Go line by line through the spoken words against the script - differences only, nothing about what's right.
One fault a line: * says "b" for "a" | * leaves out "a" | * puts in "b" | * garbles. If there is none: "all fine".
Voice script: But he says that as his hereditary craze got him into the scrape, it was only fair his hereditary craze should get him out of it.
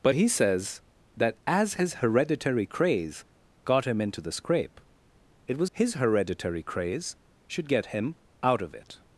* leaves out "only fair"